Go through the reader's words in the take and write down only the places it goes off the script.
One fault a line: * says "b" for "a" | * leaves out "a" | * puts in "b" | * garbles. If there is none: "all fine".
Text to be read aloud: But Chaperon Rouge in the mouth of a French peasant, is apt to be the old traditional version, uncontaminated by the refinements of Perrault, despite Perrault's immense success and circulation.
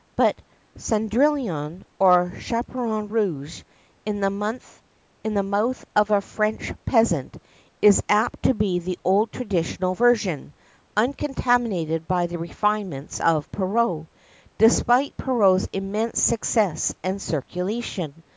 * puts in "Cendrillon or"